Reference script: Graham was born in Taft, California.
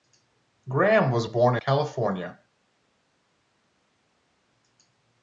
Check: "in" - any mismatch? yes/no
yes